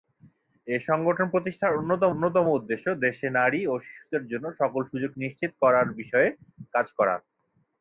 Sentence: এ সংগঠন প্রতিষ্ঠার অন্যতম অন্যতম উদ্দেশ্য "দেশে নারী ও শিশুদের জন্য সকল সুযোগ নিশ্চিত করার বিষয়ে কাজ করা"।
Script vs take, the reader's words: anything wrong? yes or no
no